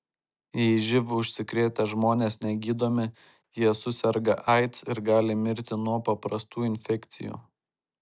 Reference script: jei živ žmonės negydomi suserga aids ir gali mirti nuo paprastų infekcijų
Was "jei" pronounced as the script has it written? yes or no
yes